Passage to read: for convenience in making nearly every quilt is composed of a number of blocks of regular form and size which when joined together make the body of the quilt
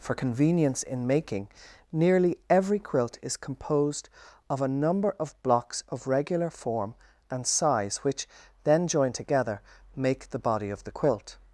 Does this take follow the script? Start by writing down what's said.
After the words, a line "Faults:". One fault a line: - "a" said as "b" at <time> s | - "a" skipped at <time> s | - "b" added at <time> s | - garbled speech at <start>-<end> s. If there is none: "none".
for convenience in making nearly every quilt is composed of a number of blocks of regular form and size which then joined together make the body of the quilt
Faults:
- "when" said as "then" at 8.6 s